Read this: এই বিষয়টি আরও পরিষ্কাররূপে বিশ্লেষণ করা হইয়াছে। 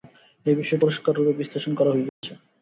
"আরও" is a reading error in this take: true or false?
true